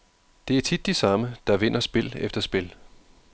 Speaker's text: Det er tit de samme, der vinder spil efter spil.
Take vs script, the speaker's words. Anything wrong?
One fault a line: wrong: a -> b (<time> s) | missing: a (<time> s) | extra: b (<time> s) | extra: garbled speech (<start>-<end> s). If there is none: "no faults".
no faults